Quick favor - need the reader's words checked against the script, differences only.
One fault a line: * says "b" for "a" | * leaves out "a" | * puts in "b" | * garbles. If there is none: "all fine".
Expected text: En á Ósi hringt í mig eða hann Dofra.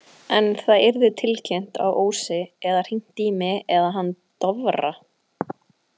* puts in "það yrði tilkynnt"
* puts in "eða"